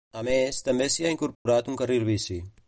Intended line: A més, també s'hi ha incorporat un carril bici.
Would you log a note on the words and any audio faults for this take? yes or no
yes